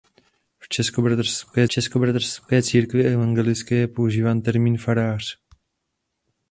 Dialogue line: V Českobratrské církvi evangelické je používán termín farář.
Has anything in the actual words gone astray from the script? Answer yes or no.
yes